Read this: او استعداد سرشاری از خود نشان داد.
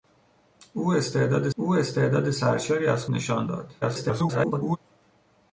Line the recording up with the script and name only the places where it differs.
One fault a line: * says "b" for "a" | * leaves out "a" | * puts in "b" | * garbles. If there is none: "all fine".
* puts in "او استعداد"
* leaves out "خود"
* garbles